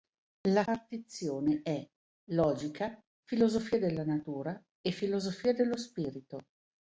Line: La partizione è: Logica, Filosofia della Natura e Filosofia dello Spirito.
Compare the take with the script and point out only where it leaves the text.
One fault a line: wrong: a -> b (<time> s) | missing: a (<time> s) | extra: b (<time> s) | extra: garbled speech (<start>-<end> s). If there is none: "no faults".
no faults